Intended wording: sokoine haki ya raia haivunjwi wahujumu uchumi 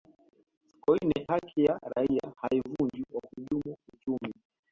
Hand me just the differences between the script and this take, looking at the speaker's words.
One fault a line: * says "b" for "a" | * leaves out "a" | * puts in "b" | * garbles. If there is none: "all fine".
all fine